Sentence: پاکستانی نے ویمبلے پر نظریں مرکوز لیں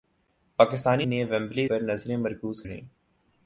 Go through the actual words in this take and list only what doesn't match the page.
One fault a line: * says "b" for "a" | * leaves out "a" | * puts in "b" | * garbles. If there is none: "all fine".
all fine